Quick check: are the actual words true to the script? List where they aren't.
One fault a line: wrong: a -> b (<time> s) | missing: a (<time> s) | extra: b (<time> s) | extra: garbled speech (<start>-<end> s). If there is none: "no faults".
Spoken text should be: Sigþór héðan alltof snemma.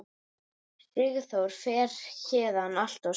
extra: fer (1.6 s)